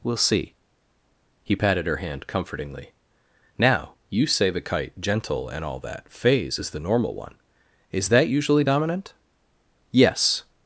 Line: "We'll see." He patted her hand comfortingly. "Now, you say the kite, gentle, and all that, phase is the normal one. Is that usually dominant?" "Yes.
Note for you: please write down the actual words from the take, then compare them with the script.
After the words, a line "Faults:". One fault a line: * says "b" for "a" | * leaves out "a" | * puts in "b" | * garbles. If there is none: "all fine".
"We'll see." He patted her hand comfortingly. "Now, you say the kite, gentle, and all that, phase is the normal one. Is that usually dominant?" "Yes.
Faults:
all fine